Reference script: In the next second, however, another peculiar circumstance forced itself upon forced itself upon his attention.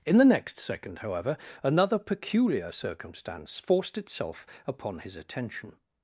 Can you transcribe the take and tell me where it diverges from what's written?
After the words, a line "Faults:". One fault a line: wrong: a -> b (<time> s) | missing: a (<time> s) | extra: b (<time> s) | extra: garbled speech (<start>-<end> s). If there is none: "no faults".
In the next second, however, another peculiar circumstance forced itself upon his attention.
Faults:
missing: forced itself upon (5.0 s)